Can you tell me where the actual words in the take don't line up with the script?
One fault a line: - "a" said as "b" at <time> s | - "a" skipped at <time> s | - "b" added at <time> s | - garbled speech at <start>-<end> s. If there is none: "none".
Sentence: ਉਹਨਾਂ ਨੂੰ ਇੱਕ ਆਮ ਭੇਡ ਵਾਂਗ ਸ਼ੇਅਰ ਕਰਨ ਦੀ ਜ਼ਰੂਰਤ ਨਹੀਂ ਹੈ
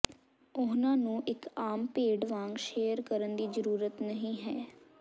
none